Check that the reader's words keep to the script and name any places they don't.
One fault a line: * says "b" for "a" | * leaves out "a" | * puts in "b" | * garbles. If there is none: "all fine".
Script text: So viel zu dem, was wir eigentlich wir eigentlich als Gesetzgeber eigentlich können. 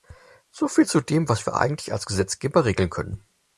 * leaves out "wir eigentlich"
* says "regeln" for "eigentlich"